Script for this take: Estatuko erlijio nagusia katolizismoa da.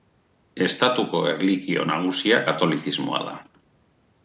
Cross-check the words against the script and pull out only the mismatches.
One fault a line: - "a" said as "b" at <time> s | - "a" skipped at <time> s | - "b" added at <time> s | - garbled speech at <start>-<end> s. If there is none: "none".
none